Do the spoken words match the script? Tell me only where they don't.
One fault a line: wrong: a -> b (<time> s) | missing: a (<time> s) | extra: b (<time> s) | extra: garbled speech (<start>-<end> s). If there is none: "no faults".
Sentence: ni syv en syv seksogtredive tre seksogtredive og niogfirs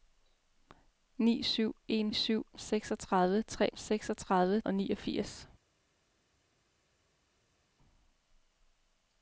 no faults